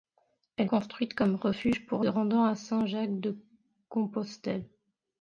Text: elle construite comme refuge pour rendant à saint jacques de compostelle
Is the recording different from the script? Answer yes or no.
no